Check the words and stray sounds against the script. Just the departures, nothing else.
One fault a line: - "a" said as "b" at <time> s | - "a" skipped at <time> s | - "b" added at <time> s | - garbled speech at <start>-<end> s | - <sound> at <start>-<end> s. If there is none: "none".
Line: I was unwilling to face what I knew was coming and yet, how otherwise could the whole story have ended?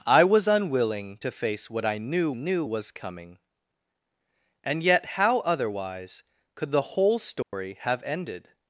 - "knew" added at 2.3 s
- dropout at 7.4-7.5 s